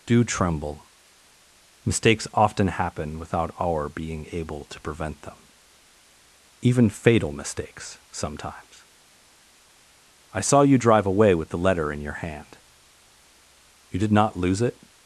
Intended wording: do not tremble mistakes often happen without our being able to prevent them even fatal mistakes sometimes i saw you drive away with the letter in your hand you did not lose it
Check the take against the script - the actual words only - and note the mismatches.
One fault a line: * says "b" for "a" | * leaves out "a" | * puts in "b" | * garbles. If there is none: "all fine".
* leaves out "not"